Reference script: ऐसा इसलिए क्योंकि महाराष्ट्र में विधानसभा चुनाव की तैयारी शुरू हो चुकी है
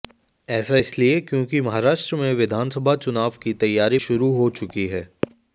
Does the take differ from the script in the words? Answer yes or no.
no